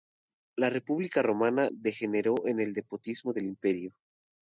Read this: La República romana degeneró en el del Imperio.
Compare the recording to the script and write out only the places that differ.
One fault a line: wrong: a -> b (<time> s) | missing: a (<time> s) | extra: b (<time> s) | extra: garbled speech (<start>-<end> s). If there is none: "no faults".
extra: despotismo (2.7 s)